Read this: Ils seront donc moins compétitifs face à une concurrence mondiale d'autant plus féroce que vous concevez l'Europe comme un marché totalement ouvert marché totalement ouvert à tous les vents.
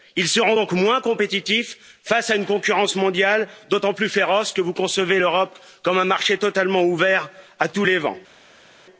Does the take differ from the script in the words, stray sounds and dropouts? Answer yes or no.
yes